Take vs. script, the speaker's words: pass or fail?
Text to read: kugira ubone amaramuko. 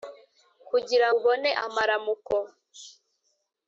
pass